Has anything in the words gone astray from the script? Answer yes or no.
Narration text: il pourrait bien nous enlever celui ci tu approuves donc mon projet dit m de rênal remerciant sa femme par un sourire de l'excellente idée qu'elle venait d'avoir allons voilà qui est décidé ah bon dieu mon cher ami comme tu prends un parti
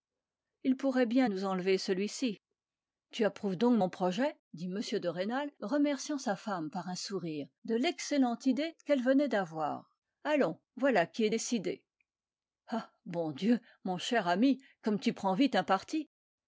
yes